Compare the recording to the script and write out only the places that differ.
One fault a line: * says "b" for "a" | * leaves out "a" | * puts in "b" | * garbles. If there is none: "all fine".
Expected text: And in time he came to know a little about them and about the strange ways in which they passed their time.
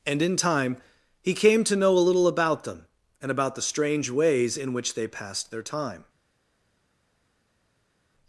all fine